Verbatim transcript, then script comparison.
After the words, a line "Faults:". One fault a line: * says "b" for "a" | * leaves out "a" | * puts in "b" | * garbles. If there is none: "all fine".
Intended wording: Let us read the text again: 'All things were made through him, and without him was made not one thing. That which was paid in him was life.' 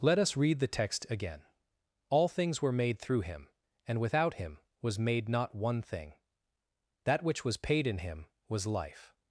Let us read the text again: 'All things were made through him, and without him was made not one thing. That which was paid in him was life.'
Faults:
all fine